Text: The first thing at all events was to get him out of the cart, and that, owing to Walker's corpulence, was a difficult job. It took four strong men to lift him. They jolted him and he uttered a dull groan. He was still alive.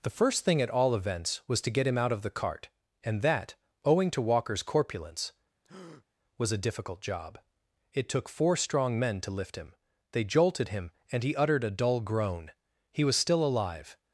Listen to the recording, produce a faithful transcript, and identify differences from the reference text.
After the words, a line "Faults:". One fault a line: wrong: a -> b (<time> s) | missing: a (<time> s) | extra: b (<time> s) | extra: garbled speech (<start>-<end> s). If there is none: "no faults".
The first thing at all events was to get him out of the cart, and that, owing to Walker's corpulence, was a difficult job. It took four strong men to lift him. They jolted him and he uttered a dull groan. He was still alive.
Faults:
no faults